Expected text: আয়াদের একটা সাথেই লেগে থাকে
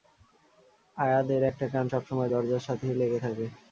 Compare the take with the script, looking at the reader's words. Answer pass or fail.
fail